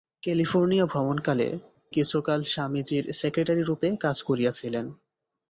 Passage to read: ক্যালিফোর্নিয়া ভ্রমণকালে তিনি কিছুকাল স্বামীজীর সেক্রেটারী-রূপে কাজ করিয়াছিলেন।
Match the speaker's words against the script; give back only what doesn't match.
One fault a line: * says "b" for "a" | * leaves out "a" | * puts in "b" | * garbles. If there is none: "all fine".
* leaves out "তিনি"